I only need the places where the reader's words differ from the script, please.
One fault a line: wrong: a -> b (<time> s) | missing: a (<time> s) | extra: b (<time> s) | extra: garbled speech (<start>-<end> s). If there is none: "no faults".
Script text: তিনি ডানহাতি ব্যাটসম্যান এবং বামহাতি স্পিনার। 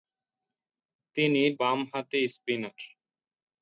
missing: ডানহাতি ব্যাটসম্যান এবং (1.4 s)